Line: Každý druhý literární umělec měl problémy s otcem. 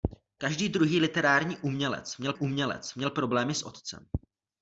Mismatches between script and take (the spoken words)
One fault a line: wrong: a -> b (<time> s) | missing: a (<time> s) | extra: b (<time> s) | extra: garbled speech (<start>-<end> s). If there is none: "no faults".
extra: umělec měl (2.3 s)